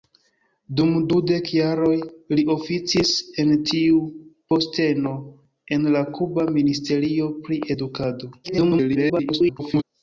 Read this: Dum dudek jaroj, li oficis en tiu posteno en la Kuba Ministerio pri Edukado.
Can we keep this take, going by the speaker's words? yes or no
no